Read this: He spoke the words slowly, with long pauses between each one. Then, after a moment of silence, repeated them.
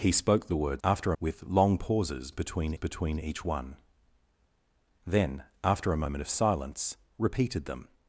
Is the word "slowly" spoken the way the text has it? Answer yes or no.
no